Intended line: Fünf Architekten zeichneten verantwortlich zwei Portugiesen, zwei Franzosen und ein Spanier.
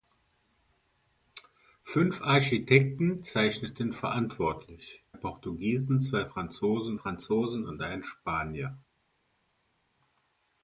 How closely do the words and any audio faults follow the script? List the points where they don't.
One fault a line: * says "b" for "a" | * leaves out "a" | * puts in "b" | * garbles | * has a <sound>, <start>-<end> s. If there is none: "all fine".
* leaves out "zwei"
* puts in "Franzosen"